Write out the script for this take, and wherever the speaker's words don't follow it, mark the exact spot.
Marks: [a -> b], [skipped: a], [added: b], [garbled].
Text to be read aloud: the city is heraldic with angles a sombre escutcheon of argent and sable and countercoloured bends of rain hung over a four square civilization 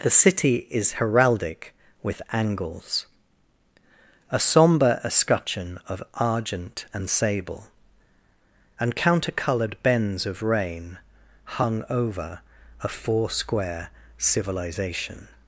the city is heraldic with angles a sombre escutcheon of argent and sable and countercoloured bends of rain hung over a four square civilization